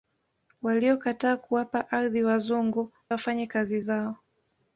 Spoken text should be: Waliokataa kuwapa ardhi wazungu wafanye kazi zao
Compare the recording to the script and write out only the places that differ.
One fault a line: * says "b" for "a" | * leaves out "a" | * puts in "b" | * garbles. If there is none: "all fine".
all fine